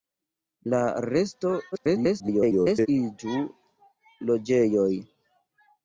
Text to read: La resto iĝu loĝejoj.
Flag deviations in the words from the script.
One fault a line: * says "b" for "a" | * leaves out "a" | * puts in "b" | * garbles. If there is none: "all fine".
* garbles